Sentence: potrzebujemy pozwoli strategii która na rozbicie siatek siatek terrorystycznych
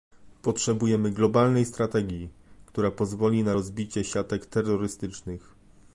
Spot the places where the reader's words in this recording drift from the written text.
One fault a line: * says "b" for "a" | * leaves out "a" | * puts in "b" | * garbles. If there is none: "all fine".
* says "globalnej" for "pozwoli"
* puts in "pozwoli"
* leaves out "siatek"